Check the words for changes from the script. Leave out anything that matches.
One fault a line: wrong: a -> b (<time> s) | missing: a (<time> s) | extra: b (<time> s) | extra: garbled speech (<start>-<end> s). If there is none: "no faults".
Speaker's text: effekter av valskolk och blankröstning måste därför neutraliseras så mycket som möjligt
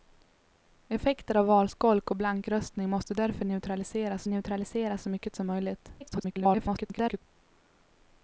extra: neutraliseras (4.3 s)
extra: garbled speech (6.0-7.2 s)